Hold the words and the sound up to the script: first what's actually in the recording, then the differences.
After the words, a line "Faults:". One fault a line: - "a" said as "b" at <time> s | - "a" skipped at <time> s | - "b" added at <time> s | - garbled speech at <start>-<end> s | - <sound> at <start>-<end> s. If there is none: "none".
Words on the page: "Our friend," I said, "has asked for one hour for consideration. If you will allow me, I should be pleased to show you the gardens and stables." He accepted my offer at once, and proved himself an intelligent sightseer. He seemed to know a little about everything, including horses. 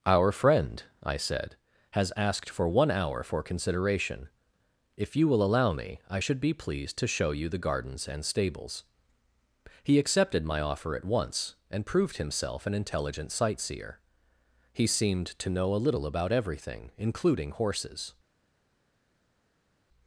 "Our friend," I said, "has asked for one hour for consideration. If you will allow me, I should be pleased to show you the gardens and stables." He accepted my offer at once, and proved himself an intelligent sightseer. He seemed to know a little about everything, including horses.
Faults:
none